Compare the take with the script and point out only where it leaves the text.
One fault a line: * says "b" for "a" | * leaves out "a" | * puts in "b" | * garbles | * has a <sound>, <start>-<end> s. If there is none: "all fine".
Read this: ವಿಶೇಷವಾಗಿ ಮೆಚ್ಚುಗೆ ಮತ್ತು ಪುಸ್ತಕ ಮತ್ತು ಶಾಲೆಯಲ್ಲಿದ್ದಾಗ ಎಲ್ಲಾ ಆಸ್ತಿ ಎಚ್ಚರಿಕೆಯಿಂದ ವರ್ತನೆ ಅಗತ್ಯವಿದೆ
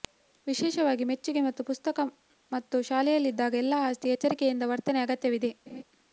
* has a laugh, 5.7-5.8 s